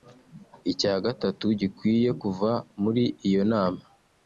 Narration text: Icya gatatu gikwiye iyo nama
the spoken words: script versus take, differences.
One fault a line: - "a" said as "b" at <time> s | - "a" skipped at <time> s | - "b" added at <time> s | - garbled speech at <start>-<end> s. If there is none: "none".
- "kuva muri" added at 2.2 s